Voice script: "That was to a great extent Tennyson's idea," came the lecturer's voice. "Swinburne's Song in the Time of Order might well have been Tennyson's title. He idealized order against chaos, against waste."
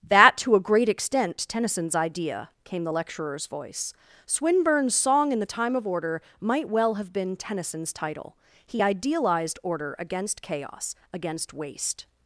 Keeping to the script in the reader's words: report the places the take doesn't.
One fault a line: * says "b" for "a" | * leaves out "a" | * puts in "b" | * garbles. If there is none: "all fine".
* leaves out "was"